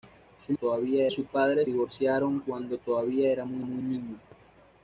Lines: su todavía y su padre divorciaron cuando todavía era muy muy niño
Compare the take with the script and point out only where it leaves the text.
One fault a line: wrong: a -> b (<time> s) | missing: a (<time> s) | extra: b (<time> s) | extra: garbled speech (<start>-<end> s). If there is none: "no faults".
no faults